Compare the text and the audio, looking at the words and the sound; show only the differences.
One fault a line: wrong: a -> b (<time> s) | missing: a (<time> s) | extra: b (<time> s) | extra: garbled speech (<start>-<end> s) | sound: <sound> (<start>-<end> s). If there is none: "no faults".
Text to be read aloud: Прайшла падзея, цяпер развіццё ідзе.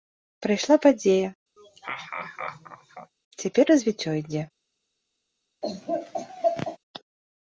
sound: laugh (1.6-3.1 s)
sound: laugh (5.6-6.8 s)